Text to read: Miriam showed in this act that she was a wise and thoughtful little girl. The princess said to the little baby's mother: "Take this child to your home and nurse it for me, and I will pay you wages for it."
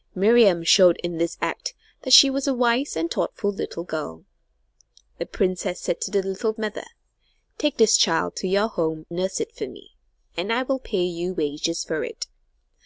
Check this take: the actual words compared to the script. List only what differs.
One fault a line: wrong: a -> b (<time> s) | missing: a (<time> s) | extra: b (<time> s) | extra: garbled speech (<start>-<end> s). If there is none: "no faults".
missing: baby's (6.5 s)
missing: and (9.1 s)